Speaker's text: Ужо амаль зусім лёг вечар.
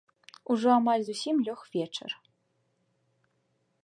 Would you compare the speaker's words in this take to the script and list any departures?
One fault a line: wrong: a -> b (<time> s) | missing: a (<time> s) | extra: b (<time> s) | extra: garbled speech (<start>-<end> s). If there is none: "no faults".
no faults